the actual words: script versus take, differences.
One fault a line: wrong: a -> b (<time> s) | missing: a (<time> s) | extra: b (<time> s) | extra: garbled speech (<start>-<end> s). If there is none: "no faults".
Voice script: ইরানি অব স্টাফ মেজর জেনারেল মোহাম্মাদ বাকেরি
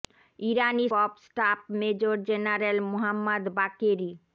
no faults